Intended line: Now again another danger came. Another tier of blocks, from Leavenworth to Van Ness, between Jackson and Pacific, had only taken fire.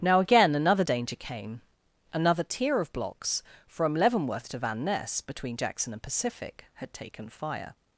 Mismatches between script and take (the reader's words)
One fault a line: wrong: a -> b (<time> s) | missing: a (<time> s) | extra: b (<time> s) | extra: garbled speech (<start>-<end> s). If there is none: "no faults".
missing: only (6.9 s)